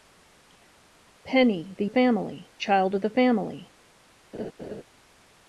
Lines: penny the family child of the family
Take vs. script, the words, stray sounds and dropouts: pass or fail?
fail